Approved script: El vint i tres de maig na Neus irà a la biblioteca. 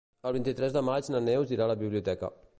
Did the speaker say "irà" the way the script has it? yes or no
yes